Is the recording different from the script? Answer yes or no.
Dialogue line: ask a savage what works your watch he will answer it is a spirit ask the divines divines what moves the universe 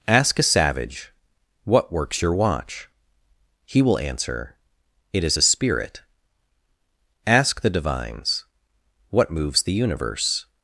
yes